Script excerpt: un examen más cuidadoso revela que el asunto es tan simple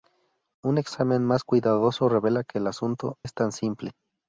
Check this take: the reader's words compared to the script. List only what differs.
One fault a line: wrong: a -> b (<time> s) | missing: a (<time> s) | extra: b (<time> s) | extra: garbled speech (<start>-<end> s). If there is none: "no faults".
no faults